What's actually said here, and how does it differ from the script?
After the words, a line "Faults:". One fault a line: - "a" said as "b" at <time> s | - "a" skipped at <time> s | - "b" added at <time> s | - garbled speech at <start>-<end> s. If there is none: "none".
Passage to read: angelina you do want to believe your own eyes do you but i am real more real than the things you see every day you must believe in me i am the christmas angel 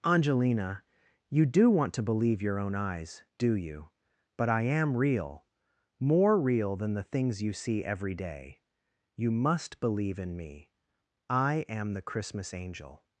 angelina you do want to believe your own eyes do you but i am real more real than the things you see every day you must believe in me i am the christmas angel
Faults:
none